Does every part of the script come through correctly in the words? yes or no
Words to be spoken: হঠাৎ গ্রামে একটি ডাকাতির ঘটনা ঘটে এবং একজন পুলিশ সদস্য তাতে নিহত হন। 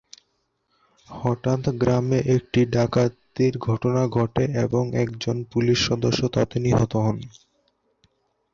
yes